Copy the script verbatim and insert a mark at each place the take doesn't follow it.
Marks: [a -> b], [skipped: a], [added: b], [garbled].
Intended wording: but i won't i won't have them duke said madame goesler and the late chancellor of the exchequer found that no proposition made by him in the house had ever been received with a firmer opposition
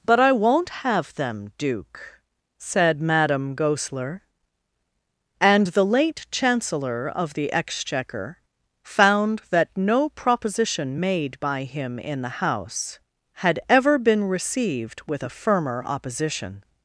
but i won't [skipped: i won't] have them duke said madame goesler and the late chancellor of the exchequer found that no proposition made by him in the house had ever been received with a firmer opposition